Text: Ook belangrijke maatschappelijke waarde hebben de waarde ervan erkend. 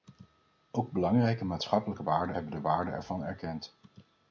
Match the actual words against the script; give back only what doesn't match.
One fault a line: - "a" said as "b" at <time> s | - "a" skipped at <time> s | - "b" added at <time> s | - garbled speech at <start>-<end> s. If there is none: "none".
none